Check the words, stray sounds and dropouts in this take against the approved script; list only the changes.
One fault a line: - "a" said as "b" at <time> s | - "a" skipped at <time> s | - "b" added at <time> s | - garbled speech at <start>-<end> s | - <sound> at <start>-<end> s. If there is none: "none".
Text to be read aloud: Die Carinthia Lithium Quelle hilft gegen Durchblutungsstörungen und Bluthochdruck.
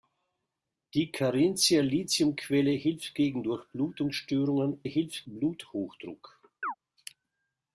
- "und" said as "hilft" at 4.8 s
- chirp at 6.6-6.7 s